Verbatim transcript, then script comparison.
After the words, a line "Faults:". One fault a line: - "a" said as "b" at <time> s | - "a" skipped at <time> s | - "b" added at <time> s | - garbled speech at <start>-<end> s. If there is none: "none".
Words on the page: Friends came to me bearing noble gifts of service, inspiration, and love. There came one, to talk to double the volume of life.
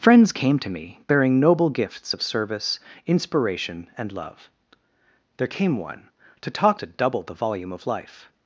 Friends came to me bearing noble gifts of service, inspiration, and love. There came one, to talk to double the volume of life.
Faults:
none